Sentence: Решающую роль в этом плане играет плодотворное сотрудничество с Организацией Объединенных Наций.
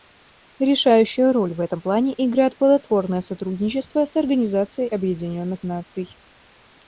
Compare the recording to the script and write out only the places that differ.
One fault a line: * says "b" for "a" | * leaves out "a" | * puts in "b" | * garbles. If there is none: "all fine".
all fine